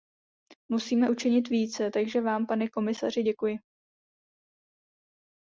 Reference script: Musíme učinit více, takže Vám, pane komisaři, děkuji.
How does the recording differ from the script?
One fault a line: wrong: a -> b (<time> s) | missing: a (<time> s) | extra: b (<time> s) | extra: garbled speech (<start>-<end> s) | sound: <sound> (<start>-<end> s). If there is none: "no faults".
no faults